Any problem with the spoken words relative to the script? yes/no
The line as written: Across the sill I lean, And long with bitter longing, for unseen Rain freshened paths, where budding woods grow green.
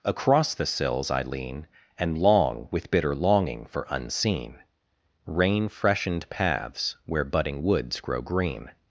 yes